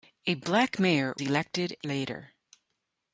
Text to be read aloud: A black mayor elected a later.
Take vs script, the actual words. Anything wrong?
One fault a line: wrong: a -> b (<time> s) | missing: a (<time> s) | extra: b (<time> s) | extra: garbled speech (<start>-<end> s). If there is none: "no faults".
no faults